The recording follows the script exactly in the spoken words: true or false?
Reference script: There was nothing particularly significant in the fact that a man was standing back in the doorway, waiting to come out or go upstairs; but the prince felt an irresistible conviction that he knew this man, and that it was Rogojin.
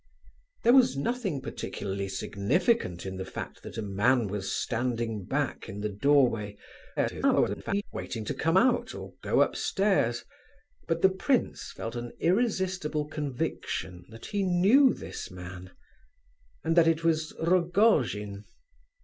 false